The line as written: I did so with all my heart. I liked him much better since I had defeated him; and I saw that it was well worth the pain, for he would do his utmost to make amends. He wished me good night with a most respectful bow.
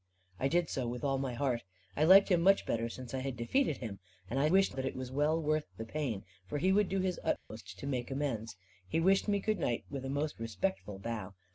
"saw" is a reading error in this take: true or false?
true